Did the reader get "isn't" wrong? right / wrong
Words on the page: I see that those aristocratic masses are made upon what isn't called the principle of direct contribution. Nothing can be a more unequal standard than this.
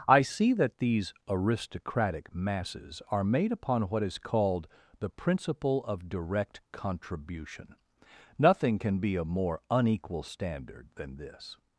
wrong